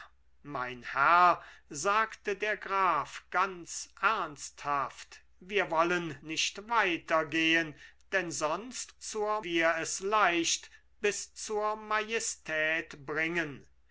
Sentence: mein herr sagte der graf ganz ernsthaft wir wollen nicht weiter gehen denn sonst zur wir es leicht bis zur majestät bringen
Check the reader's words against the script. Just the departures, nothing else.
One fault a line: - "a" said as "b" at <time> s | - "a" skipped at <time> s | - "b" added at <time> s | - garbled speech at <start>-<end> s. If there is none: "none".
none